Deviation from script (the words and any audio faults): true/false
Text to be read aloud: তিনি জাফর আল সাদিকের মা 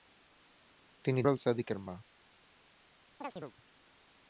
true